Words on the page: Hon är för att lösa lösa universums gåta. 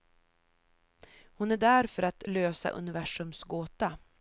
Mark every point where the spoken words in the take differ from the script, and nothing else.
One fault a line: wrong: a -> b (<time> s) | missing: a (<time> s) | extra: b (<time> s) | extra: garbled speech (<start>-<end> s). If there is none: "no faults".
extra: där (1.6 s)
missing: lösa (2.7 s)